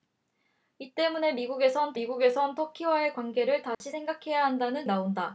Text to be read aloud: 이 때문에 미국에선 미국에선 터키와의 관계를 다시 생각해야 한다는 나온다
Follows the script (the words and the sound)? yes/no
no